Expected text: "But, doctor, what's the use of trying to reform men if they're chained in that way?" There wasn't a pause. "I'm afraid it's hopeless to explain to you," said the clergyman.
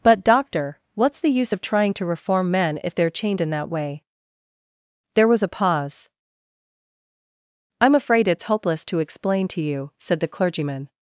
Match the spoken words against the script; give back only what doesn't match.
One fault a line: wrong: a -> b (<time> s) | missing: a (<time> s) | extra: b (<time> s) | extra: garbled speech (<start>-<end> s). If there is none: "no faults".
wrong: wasn't -> was (5.3 s)